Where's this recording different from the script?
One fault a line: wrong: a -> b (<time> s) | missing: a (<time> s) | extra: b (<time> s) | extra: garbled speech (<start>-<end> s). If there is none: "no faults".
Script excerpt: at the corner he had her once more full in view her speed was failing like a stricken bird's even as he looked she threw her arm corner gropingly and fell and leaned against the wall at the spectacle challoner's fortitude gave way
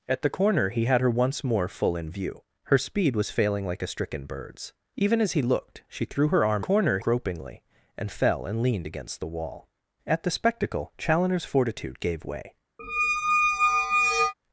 no faults